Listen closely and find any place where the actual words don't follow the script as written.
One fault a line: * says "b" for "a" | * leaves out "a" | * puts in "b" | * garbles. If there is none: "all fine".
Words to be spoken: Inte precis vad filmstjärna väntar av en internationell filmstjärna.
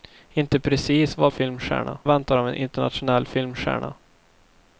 all fine